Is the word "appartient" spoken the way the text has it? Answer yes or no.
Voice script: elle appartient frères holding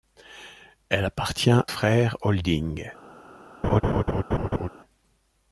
yes